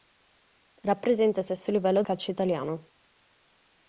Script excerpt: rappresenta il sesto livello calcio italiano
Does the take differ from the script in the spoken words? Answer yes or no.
no